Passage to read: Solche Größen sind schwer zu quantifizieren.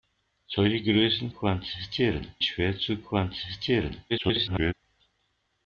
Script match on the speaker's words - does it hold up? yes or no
no